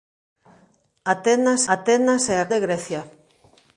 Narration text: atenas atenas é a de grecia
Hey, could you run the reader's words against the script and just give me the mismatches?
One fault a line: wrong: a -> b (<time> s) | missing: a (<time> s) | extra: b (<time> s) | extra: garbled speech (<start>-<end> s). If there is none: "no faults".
no faults